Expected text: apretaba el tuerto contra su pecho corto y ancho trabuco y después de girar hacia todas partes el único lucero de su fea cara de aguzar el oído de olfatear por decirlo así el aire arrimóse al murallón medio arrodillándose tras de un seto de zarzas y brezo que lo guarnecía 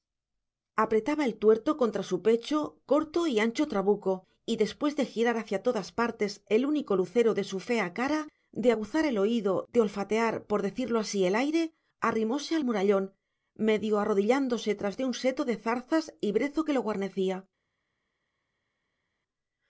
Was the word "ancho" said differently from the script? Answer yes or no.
no